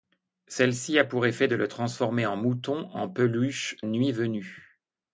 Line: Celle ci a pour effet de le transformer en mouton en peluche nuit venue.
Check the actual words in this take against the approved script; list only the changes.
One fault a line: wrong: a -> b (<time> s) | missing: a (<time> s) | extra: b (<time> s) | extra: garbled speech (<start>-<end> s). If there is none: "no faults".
no faults